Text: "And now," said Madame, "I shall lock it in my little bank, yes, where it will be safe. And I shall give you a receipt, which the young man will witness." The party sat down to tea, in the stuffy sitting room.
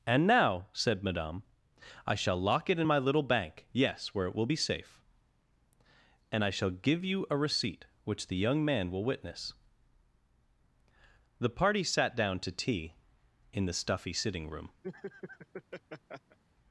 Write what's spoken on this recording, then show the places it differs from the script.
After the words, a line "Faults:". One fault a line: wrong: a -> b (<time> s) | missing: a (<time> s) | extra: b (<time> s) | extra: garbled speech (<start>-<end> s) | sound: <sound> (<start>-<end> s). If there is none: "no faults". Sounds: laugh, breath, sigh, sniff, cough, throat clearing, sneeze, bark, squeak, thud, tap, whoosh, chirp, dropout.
"And now," said Madame, "I shall lock it in my little bank, yes, where it will be safe. And I shall give you a receipt, which the young man will witness." The party sat down to tea, in the stuffy sitting room.
Faults:
sound: laugh (14.8-16.4 s)